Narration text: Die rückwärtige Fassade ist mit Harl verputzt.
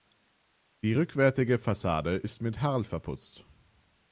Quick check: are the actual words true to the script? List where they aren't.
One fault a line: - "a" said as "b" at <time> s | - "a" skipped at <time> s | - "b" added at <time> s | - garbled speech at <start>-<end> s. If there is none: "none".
none